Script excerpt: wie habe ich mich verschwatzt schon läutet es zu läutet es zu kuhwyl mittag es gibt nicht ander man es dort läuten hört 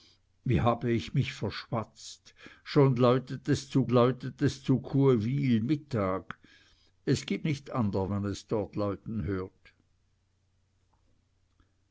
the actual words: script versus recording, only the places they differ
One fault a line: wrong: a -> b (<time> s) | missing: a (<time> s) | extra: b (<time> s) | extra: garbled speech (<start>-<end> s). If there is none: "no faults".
no faults